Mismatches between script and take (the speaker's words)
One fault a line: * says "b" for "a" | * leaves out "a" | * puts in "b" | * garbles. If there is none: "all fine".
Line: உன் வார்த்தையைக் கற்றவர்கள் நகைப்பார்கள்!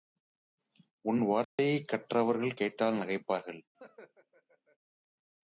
* puts in "கேட்டால்"